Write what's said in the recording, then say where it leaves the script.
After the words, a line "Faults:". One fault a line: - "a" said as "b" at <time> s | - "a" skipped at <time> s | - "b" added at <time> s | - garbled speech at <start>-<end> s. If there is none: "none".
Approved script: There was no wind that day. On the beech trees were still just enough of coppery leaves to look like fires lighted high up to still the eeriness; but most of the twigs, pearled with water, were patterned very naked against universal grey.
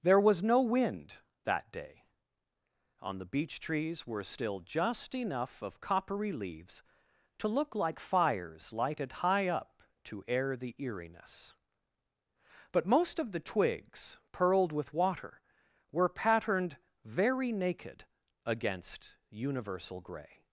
There was no wind that day. On the beech trees were still just enough of coppery leaves to look like fires lighted high up to air the eeriness; but most of the twigs, pearled with water, were patterned very naked against universal grey.
Faults:
- "still" said as "air" at 10.3 s